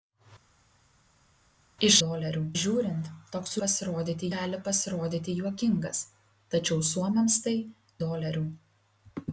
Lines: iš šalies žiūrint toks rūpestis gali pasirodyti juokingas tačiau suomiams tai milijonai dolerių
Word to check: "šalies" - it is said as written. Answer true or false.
false